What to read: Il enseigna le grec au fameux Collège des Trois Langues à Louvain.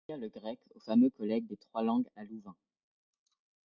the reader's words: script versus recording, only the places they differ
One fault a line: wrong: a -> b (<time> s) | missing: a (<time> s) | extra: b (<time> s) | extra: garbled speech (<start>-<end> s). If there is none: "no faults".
no faults